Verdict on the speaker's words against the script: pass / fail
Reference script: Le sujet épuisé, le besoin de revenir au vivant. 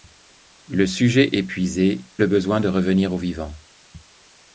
pass